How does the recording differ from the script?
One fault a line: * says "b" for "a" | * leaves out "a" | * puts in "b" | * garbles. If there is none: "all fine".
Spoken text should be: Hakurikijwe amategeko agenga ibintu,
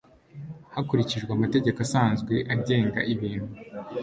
* puts in "asanzwe"